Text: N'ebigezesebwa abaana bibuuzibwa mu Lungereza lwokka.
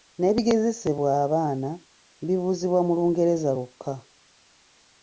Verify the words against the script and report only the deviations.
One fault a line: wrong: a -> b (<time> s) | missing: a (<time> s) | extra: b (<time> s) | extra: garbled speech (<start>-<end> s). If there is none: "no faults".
no faults